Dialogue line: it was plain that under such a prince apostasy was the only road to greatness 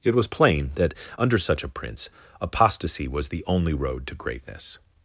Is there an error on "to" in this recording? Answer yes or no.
no